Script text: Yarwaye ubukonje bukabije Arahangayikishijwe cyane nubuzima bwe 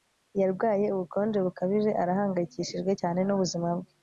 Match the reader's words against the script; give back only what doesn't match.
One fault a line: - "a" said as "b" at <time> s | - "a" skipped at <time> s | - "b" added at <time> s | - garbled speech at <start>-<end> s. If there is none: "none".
none